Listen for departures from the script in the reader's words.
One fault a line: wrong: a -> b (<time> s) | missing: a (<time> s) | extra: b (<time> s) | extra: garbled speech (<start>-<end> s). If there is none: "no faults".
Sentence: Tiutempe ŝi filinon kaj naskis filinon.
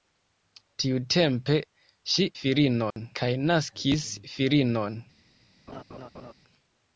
no faults